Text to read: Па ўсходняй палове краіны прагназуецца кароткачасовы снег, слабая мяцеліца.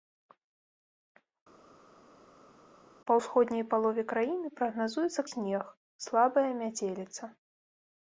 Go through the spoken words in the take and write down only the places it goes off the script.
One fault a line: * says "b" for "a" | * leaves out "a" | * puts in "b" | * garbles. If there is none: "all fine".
* leaves out "кароткачасовы"